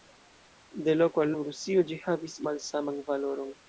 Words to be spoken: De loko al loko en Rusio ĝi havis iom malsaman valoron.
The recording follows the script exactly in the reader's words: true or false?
false